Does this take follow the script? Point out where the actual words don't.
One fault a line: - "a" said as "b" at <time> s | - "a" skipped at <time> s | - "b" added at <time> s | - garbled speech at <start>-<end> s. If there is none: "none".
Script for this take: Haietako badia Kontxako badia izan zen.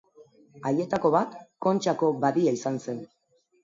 - "badia" said as "bat" at 1.2 s